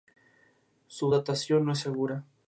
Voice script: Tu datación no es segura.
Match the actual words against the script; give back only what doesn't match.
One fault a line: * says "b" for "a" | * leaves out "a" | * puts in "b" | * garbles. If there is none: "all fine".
* says "Su" for "Tu"